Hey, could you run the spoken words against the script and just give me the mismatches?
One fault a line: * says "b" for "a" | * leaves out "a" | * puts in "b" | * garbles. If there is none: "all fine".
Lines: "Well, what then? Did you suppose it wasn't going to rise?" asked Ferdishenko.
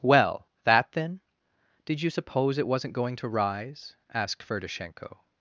* says "that" for "what"